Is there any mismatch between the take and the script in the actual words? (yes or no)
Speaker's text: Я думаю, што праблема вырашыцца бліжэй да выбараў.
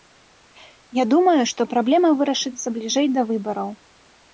no